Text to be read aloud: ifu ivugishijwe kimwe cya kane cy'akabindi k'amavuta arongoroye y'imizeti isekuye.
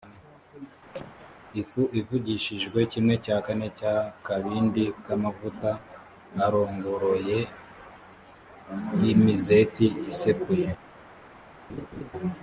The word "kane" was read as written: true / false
true